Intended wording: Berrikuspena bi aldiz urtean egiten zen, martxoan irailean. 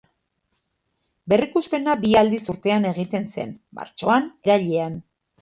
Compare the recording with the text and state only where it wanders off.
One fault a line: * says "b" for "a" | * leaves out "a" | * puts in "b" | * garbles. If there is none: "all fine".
all fine